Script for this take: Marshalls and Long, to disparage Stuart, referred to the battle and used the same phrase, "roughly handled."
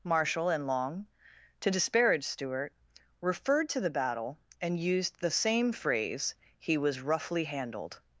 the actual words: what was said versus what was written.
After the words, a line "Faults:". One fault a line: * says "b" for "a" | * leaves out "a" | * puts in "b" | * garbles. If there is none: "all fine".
Marshall and Long, to disparage Stuart, referred to the battle and used the same phrase, "he was roughly handled."
Faults:
* says "Marshall" for "Marshalls"
* puts in "he was"